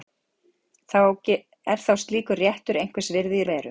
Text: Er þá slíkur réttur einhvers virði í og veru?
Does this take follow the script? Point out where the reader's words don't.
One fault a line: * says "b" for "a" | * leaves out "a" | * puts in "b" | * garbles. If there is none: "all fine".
all fine